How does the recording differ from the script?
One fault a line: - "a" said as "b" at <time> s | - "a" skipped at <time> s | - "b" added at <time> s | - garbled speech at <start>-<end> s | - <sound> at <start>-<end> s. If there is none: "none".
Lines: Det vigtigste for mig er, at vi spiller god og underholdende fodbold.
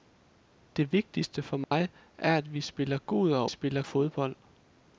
- dropout at 1.6-1.7 s
- "underholdende" said as "spiller" at 3.5 s